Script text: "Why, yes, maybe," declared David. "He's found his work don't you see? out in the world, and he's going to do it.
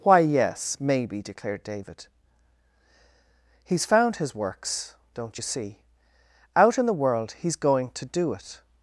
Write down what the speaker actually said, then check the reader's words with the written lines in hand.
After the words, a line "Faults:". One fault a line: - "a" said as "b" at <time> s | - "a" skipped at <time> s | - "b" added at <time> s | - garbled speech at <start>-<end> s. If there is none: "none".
"Why, yes, maybe," declared David. "He's found his works don't you see? out in the world, he's going to do it.
Faults:
- "work" said as "works" at 4.3 s
- "and" skipped at 7.3 s